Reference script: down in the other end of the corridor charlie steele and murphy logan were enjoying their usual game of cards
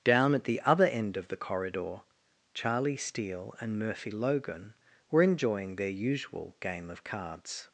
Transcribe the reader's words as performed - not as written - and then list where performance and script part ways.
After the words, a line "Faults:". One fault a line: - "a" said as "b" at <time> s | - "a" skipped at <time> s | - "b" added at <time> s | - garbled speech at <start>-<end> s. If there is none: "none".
down at the other end of the corridor charlie steele and murphy logan were enjoying their usual game of cards
Faults:
- "in" said as "at" at 0.3 s